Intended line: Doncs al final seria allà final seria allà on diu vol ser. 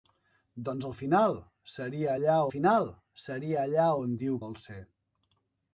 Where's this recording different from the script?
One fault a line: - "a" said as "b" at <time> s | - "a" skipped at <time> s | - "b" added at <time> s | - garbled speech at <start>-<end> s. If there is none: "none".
none